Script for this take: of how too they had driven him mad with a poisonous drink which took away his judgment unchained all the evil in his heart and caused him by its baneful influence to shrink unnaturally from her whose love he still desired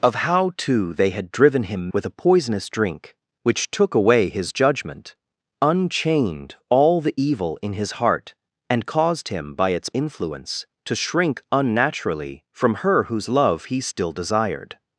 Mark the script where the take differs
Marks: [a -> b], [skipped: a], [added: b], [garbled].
of how too they had driven him [skipped: mad] with a poisonous drink which took away his judgment unchained all the evil in his heart and caused him by its [skipped: baneful] influence to shrink unnaturally from her whose love he still desired